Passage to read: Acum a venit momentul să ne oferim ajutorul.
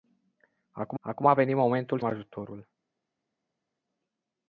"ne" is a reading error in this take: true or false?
true